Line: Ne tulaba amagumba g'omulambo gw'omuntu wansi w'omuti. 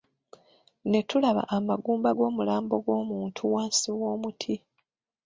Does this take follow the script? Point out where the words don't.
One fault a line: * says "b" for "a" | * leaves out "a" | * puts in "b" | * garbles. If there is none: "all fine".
all fine